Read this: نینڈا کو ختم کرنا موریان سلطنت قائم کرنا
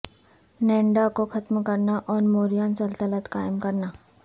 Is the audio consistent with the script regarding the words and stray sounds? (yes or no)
no